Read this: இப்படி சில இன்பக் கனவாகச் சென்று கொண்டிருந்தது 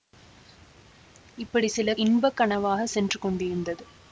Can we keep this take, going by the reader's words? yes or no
yes